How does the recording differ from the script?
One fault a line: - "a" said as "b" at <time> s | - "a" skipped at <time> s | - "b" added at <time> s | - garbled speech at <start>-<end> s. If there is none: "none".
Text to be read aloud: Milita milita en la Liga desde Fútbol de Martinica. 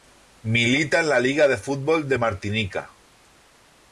- "milita" skipped at 1.0 s
- "desde" said as "de" at 1.5 s